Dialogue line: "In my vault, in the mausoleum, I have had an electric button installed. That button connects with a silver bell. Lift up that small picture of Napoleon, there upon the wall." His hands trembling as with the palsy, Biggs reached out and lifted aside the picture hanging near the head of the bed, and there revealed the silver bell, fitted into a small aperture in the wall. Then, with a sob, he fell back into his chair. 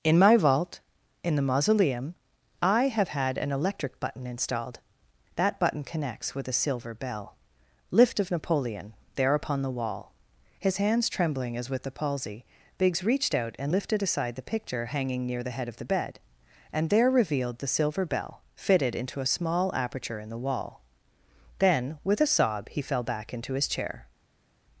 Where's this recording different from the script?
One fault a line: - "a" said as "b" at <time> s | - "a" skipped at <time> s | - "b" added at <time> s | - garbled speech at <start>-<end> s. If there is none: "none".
- "up that small picture" skipped at 8.2 s